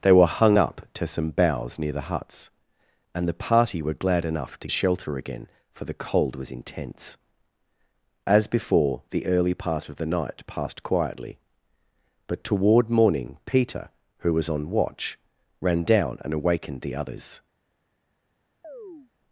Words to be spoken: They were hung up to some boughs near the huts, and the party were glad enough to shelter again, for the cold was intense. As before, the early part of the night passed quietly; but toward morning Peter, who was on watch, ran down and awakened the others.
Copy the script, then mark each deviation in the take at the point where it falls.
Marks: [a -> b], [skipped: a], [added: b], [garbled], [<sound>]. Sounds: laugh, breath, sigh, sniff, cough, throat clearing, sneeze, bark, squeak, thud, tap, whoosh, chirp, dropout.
They were hung up to some boughs near the huts, and the party were glad enough to shelter again, for the cold was intense. As before, the early part of the night passed quietly; but toward morning Peter, who was on watch, ran down and awakened the others. [chirp]